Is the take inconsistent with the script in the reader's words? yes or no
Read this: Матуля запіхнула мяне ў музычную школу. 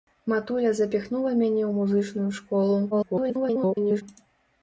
yes